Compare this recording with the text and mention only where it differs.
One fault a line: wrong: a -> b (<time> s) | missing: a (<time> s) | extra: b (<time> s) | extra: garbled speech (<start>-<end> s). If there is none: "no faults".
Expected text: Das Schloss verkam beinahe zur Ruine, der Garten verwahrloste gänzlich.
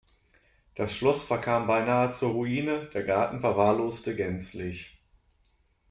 no faults